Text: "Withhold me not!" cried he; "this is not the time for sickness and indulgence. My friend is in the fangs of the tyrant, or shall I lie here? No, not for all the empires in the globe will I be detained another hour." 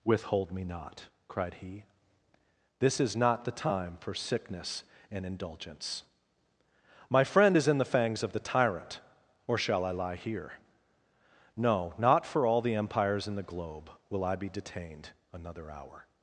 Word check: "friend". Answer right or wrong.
right